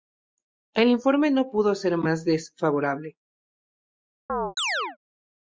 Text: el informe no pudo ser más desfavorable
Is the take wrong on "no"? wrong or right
right